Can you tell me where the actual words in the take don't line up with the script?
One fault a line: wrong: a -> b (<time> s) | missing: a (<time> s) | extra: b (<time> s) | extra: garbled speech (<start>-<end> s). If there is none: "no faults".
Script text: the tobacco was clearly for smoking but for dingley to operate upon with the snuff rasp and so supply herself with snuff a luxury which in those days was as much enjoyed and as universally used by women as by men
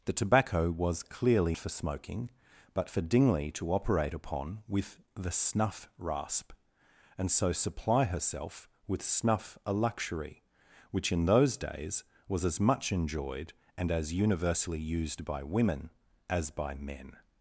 no faults